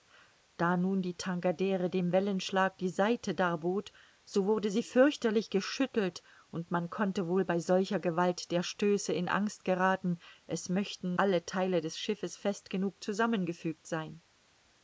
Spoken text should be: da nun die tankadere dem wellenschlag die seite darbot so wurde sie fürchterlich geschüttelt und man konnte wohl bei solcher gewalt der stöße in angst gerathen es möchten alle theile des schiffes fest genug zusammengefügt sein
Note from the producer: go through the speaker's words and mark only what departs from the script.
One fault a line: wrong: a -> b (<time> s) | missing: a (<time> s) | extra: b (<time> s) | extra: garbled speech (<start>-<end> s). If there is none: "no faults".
no faults